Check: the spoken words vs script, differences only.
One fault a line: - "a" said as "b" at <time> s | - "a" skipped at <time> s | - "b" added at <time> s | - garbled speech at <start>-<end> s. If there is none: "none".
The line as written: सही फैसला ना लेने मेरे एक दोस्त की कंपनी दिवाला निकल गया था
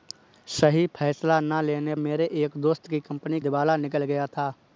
none